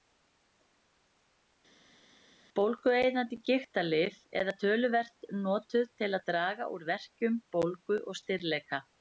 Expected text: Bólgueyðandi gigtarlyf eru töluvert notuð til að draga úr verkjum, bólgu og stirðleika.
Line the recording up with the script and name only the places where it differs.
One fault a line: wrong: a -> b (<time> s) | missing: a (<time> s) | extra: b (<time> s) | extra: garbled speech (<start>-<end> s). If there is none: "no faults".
no faults